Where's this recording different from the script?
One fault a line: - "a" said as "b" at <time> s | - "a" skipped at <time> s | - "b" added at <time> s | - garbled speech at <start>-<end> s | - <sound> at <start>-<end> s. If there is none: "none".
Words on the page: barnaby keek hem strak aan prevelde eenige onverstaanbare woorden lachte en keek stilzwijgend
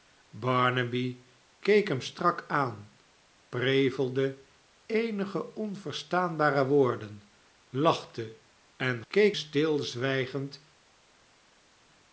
none